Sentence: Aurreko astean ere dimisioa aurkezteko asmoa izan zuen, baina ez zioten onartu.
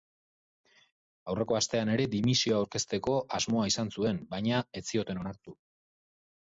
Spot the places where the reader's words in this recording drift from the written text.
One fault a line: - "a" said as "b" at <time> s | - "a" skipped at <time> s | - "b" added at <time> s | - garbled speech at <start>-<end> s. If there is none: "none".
none